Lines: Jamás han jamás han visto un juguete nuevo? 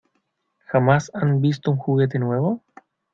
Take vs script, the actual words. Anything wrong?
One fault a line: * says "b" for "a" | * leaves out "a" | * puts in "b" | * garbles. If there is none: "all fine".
* leaves out "jamás han"